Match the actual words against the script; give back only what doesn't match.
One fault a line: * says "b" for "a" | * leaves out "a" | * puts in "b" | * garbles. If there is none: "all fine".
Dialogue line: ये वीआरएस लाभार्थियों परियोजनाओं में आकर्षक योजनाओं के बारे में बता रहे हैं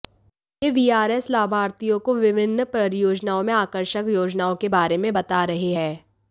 * puts in "को विभिन्न"